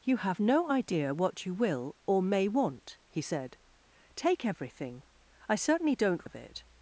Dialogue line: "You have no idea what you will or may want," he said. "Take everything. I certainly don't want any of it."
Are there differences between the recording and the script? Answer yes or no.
yes